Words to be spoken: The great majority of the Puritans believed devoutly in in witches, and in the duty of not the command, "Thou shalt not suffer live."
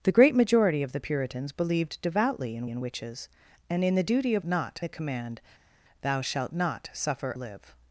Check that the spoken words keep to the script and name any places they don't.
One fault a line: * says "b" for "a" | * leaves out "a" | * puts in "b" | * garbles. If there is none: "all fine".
all fine